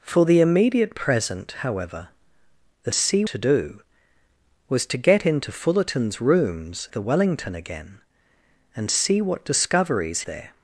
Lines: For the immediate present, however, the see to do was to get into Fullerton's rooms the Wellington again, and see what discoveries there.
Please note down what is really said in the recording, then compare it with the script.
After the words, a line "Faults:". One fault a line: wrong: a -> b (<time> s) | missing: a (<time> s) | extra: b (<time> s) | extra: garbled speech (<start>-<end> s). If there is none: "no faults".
For the immediate present, however, the see to do was to get into Fullerton's rooms the Wellington again, and see what discoveries there.
Faults:
no faults